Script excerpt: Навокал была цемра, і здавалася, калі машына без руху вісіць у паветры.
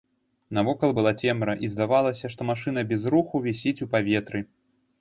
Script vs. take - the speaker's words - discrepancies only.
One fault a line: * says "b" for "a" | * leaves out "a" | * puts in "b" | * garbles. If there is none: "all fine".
* says "што" for "калі"